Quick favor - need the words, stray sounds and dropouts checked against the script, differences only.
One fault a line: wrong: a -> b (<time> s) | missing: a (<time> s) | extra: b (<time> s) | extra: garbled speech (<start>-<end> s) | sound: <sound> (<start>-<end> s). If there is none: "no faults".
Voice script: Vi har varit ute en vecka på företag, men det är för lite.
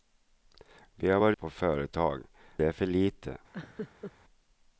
missing: ute en vecka (1.4 s)
missing: men (2.2 s)
sound: laugh (3.5-4.1 s)